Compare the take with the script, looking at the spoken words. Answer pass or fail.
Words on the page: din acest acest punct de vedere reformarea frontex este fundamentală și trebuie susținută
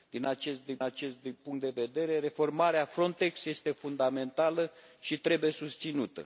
pass